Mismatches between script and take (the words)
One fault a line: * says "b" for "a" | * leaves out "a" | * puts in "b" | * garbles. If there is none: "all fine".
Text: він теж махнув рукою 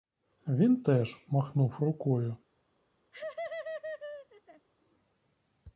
all fine